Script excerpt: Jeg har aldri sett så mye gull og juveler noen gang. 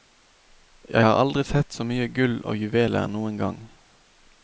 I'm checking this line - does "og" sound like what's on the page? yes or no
yes